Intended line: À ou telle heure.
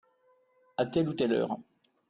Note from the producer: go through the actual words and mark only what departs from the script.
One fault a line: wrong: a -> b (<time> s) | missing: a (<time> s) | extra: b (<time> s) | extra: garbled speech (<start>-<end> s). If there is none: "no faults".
extra: telle (0.8 s)